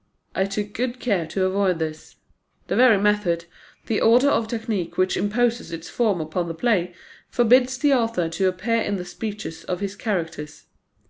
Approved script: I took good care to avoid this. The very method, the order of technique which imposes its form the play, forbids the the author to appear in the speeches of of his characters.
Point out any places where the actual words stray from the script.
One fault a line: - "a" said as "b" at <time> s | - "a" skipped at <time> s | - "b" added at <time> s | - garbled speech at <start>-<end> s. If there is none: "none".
- "upon" added at 6.2 s
- "the" skipped at 7.9 s
- "of" skipped at 9.8 s